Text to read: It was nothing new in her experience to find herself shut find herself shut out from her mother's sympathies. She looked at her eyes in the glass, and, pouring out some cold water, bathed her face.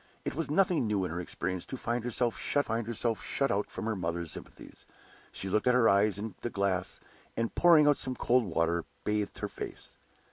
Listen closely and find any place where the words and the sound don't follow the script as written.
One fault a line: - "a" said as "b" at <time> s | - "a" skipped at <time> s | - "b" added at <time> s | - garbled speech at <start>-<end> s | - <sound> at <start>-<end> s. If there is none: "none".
none